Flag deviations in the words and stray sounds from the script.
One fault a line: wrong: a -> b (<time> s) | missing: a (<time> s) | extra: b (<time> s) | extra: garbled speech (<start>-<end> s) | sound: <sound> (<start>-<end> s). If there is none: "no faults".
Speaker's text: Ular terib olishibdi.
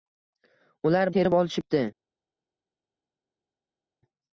no faults